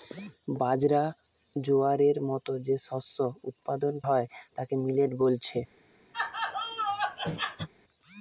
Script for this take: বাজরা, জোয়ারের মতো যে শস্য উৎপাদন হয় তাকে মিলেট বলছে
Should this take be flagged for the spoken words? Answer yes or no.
no